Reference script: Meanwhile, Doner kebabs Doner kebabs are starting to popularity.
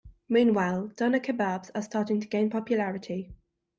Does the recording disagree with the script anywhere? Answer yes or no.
yes